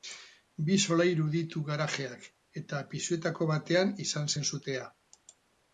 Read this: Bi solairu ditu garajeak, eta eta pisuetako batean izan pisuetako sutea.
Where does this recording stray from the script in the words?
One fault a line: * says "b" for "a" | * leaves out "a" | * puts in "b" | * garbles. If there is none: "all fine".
* leaves out "eta"
* says "zen" for "pisuetako"